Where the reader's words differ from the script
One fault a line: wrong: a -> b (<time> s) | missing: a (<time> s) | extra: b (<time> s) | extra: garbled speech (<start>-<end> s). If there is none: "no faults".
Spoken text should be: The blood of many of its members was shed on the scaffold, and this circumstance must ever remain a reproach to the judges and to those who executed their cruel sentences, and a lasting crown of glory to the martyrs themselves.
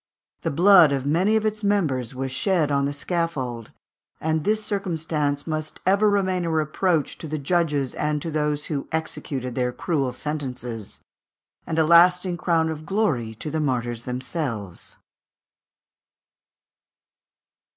no faults